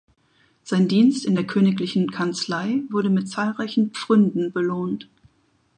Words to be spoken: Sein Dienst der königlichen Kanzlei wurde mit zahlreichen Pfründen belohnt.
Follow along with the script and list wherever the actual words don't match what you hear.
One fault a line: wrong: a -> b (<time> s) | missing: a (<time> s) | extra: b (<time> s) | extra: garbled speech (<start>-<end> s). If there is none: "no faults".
extra: in (1.2 s)